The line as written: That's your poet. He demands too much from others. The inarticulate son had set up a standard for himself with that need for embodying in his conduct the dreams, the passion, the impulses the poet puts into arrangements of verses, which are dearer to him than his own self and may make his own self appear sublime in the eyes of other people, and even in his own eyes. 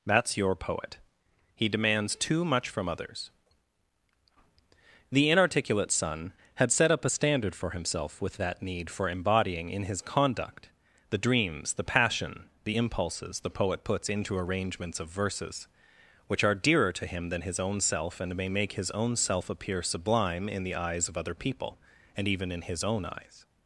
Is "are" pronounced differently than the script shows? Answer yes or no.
no